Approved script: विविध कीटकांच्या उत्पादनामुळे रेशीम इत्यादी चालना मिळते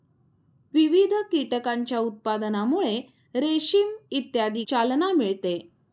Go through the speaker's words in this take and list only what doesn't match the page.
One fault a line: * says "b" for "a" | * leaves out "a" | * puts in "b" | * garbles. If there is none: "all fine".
all fine